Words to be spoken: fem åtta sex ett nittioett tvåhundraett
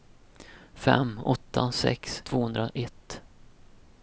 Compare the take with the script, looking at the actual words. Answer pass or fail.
fail